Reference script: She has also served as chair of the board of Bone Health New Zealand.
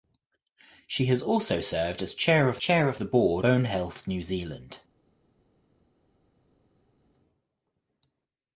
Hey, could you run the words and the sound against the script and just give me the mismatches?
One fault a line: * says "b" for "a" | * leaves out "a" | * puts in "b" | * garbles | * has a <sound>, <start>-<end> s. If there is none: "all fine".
* puts in "chair of"
* leaves out "of"